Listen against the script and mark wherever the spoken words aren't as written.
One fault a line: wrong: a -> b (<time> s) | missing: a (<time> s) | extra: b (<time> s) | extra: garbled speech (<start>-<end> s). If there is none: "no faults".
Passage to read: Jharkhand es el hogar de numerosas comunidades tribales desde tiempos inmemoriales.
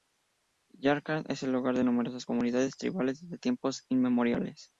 no faults